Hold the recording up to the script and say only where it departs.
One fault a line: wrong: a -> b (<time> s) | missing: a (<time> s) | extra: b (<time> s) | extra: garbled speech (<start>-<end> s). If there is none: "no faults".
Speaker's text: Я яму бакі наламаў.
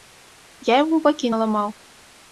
no faults